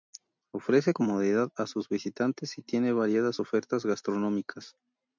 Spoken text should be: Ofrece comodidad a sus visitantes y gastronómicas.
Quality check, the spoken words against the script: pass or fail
fail